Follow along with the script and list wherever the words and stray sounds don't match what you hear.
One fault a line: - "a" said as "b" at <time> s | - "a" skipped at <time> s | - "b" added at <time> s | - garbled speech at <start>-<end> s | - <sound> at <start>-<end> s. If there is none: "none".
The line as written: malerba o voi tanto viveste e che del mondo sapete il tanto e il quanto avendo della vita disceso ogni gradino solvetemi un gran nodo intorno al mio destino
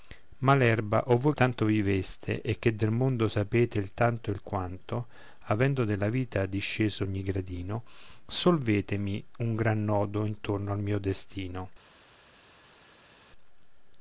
none